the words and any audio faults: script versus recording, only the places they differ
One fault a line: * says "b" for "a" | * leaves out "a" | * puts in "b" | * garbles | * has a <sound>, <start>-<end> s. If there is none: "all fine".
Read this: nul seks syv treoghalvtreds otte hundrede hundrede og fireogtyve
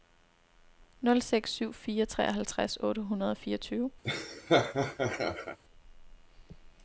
* puts in "fire"
* leaves out "hundrede"
* has a laugh, 4.0-5.6 s